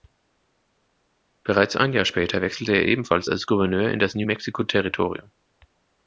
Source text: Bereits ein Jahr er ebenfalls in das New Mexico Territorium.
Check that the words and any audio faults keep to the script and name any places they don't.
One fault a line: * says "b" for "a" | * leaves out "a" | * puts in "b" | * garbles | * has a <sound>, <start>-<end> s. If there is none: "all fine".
* puts in "später wechselte"
* puts in "als Gouverneur"